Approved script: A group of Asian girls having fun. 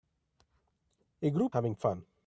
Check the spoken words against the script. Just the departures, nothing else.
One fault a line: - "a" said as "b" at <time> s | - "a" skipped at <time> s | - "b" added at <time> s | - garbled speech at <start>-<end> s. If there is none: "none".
- "of Asian girls" skipped at 1.6 s